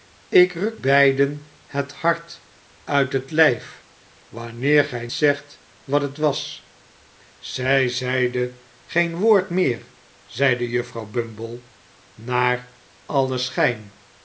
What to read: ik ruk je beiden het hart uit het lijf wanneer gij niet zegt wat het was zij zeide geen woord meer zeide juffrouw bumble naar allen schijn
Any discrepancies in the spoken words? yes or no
yes